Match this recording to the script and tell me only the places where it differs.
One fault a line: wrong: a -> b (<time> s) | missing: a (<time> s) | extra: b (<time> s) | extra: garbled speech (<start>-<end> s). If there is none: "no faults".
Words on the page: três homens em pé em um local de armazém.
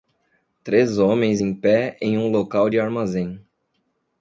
no faults